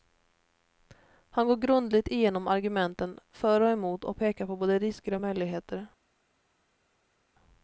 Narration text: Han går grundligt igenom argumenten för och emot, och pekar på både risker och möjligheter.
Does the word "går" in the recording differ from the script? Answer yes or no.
no